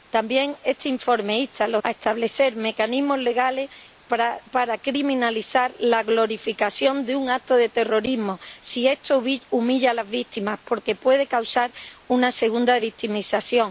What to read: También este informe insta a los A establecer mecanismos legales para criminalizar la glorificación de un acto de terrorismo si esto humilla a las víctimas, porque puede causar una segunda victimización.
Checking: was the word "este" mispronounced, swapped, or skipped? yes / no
no